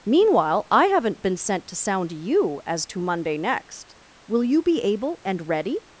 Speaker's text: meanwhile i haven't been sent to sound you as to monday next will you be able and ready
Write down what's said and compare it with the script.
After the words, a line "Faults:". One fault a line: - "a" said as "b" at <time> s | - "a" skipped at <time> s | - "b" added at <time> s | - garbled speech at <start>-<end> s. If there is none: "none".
meanwhile i haven't been sent to sound you as to monday next will you be able and ready
Faults:
none